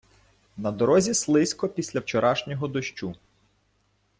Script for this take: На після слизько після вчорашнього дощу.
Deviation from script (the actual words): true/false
true